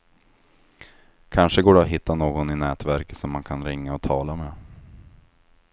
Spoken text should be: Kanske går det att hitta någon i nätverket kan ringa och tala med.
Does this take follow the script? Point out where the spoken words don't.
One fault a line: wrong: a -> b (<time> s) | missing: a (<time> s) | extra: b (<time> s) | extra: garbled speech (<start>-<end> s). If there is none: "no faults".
extra: som man (3.2 s)